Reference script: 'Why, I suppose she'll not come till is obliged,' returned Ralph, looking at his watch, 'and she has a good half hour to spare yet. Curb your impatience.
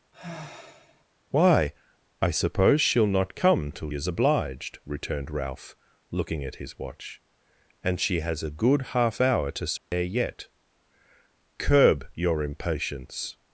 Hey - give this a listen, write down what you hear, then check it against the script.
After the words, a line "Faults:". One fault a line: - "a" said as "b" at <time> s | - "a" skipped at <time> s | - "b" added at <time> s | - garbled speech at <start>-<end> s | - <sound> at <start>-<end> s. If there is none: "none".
'Why, I suppose she'll not come till is obliged,' returned Ralph, looking at his watch, 'and she has a good half hour to spare yet. Curb your impatience.
Faults:
- sigh at 0.1-1.1 s
- dropout at 9.8-9.9 s